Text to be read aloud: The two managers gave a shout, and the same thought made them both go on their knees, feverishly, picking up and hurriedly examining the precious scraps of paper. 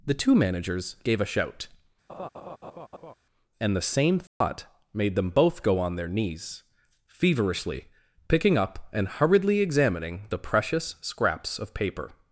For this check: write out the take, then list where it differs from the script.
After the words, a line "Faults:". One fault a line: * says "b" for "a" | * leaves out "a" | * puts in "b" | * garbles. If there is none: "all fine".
The two managers gave a shout, and the same thought made them both go on their knees, feverishly, picking up and hurriedly examining the precious scraps of paper.
Faults:
all fine